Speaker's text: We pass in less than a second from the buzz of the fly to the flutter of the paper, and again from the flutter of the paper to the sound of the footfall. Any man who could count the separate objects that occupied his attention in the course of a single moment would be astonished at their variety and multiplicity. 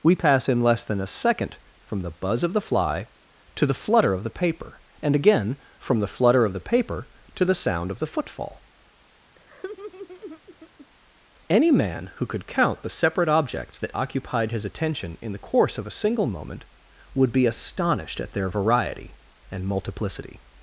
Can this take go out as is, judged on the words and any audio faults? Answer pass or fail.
fail